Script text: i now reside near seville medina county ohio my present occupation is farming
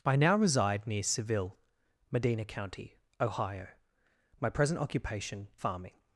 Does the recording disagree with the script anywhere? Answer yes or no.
yes